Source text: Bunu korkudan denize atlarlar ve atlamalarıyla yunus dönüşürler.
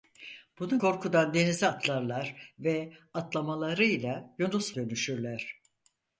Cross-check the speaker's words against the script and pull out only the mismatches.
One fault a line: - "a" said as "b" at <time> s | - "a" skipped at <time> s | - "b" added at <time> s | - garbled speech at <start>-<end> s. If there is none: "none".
none